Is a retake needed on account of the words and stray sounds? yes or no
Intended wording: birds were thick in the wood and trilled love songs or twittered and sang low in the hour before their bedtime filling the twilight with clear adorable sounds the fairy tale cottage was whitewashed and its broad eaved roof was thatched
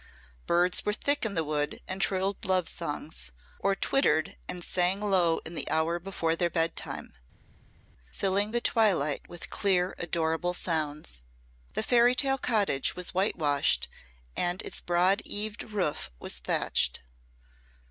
no